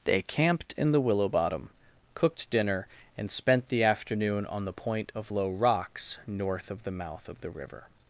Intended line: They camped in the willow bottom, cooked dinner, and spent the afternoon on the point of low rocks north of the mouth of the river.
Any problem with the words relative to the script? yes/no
no